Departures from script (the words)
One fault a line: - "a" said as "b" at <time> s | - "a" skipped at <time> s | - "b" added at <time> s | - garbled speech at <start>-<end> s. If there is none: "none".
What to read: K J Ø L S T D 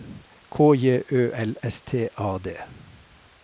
- "A" added at 2.2 s